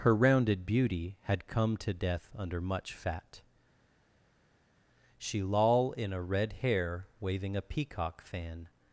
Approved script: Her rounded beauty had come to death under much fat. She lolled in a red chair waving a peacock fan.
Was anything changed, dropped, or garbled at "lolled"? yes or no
yes